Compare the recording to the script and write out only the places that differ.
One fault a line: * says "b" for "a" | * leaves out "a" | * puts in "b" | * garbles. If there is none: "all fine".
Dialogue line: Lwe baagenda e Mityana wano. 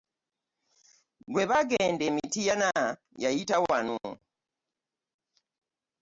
* puts in "yayita"